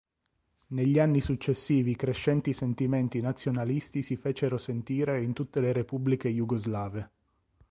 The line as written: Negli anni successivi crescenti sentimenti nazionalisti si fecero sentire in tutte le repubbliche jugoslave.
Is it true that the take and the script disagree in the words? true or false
false